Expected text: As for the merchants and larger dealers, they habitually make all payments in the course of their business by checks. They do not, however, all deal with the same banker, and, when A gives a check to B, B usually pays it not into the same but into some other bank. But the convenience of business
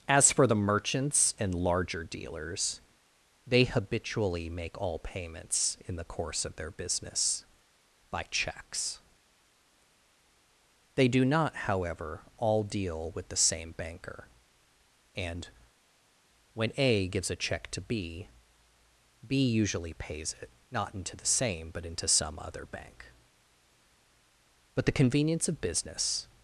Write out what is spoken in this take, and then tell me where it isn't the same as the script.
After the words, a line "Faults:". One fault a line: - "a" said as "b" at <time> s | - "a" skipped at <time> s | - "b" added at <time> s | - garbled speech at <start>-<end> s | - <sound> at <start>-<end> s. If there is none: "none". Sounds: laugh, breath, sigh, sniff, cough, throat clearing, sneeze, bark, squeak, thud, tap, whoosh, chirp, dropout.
As for the merchants and larger dealers, they habitually make all payments in the course of their business by checks. They do not, however, all deal with the same banker, and, when A gives a check to B, B usually pays it not into the same but into some other bank. But the convenience of business
Faults:
none